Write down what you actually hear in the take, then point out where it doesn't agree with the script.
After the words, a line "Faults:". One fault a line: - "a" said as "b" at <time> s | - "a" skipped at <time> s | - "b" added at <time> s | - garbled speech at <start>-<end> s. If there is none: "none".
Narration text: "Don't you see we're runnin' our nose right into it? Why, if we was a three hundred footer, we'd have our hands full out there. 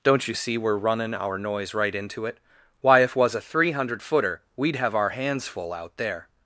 "Don't you see we're runnin' our noise right into it? Why, if was a three hundred footer, we'd have our hands full out there.
Faults:
- "nose" said as "noise" at 1.4 s
- "we" skipped at 3.1 s